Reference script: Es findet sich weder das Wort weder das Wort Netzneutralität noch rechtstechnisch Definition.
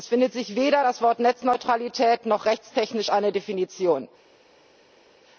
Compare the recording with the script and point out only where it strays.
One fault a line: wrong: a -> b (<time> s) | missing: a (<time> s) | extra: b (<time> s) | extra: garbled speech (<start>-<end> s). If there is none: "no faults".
missing: weder das Wort (1.2 s)
extra: eine (3.1 s)